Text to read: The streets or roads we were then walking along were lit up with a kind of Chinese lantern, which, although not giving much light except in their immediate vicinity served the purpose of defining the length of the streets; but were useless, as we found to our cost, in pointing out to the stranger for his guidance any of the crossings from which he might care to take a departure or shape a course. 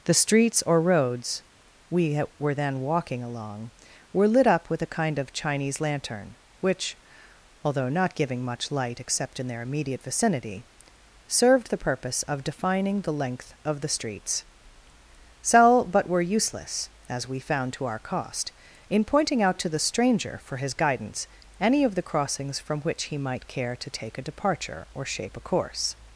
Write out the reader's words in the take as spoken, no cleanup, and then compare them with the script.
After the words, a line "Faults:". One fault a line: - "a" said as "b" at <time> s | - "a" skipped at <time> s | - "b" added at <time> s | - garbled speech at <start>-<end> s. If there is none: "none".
The streets or roads we were then walking along were lit up with a kind of Chinese lantern, which, although not giving much light except in their immediate vicinity served the purpose of defining the length of the streets; sell but were useless, as we found to our cost, in pointing out to the stranger for his guidance any of the crossings from which he might care to take a departure or shape a course.
Faults:
- "sell" added at 15.4 s